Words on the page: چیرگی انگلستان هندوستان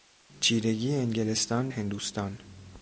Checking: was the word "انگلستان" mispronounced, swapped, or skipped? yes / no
no